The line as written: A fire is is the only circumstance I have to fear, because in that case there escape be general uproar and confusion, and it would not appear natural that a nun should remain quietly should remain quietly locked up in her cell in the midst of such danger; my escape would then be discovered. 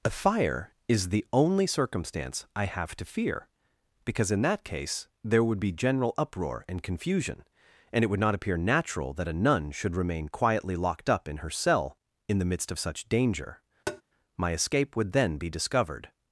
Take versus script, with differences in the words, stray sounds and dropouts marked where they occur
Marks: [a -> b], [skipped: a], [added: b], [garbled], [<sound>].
A fire is [skipped: is] the only circumstance I have to fear, because in that case there [escape -> would] be general uproar and confusion, and it would not appear natural that a nun should remain quietly [skipped: should remain quietly] locked up in her cell in the midst of such danger; [tap] my escape would then be discovered.